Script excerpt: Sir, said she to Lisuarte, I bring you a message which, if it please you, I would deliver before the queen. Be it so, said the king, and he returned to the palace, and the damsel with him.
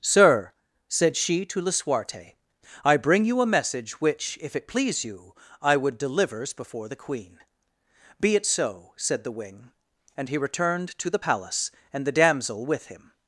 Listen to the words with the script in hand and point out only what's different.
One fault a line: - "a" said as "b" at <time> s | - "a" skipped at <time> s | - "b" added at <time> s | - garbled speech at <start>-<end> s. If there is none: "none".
- "deliver" said as "delivers" at 6.0 s
- "king" said as "wing" at 9.3 s